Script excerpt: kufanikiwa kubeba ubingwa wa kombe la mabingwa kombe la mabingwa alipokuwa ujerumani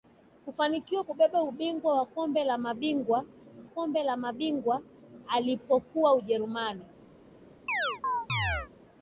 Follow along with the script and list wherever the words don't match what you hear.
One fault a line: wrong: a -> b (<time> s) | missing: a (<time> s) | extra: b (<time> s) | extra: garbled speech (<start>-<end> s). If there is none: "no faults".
no faults